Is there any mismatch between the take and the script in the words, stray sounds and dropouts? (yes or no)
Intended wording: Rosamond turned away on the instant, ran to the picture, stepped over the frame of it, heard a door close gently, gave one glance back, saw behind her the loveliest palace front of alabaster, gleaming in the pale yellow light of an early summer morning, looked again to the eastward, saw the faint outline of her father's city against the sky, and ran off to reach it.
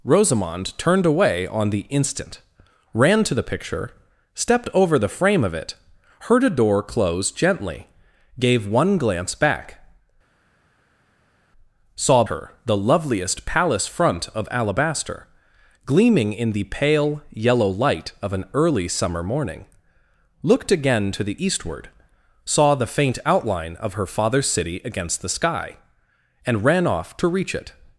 yes